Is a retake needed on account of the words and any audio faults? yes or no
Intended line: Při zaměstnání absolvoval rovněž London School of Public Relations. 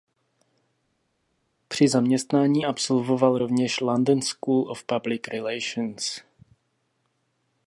no